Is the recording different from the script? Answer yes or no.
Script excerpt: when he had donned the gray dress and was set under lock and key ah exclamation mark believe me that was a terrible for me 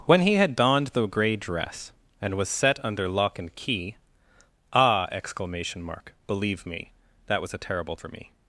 no